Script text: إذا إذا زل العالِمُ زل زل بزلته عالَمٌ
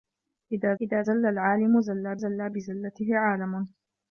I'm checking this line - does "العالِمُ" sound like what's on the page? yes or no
yes